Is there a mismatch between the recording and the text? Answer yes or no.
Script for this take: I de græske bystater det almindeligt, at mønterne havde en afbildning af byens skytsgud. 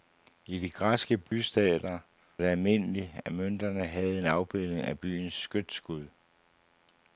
no